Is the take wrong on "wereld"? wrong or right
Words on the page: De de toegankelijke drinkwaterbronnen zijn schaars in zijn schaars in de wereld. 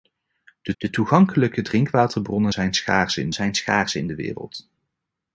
right